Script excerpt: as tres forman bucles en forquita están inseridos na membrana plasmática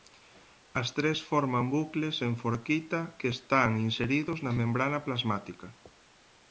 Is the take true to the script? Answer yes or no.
no